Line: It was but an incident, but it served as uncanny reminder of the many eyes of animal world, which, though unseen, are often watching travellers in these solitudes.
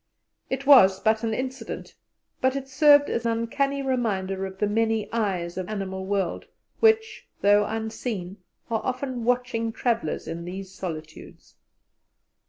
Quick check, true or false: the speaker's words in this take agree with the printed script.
true